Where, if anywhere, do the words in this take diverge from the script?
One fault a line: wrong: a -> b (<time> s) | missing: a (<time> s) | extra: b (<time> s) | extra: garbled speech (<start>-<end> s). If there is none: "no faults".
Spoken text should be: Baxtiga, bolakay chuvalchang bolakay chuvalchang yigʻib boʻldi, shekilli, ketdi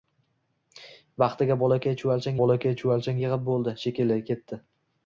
no faults